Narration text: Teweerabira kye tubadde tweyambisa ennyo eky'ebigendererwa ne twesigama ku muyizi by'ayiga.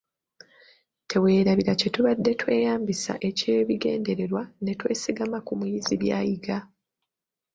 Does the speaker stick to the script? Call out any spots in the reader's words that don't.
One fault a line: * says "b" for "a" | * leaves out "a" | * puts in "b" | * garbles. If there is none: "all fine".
* leaves out "ennyo"